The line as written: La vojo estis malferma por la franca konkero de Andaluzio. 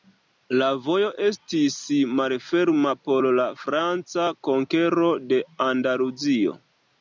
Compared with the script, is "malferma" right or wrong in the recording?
right